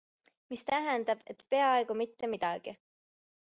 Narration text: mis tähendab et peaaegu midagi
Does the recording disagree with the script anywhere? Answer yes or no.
yes